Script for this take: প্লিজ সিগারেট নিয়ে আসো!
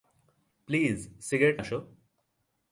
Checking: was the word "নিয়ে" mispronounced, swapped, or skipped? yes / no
yes